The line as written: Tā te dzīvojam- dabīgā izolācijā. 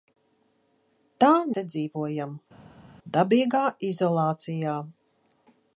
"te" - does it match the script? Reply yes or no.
yes